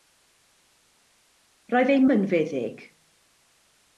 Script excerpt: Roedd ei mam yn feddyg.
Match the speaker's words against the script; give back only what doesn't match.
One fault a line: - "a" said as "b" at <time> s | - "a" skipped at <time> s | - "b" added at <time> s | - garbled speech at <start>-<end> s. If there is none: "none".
- "mam" skipped at 2.0 s